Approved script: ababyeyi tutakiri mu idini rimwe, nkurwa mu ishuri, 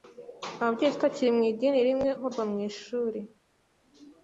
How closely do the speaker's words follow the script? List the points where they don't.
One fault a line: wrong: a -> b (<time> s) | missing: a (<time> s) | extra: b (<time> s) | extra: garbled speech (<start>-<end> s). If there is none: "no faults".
no faults